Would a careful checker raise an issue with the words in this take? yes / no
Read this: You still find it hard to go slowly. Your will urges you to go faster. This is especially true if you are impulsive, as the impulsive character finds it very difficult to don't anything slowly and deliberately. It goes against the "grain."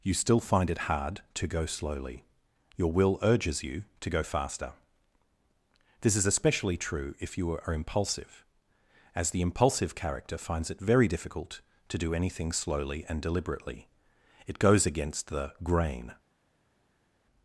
yes